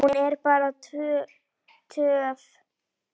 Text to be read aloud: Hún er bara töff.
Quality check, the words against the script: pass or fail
pass